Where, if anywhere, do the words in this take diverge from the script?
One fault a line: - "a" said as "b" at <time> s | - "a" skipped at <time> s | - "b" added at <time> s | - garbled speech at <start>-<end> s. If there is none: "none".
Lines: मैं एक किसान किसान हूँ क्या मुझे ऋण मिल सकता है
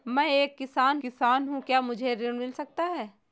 none